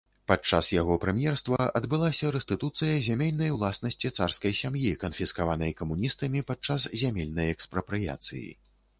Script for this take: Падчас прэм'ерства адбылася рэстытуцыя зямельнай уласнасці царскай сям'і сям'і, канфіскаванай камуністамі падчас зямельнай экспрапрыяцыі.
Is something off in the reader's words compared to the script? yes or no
yes